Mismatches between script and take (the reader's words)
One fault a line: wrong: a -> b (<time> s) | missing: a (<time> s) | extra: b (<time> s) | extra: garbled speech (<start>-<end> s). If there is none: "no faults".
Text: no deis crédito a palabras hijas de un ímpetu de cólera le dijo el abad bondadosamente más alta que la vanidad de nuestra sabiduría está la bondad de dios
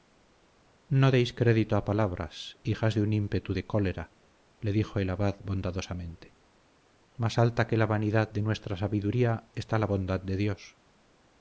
no faults